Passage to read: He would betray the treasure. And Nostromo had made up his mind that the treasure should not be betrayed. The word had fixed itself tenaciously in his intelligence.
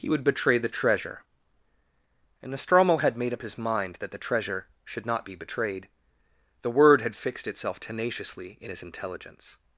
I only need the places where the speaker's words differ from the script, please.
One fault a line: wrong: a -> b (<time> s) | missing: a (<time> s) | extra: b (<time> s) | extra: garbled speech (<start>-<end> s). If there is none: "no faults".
no faults